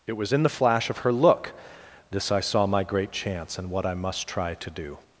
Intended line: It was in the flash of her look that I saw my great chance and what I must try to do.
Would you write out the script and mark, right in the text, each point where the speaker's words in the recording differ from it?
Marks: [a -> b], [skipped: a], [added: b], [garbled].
It was in the flash of her look [that -> this] I saw my great chance and what I must try to do.